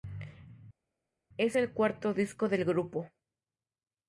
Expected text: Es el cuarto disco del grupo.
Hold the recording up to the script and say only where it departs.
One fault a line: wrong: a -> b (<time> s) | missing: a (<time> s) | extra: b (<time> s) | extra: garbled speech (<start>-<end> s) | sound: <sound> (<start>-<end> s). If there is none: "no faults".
no faults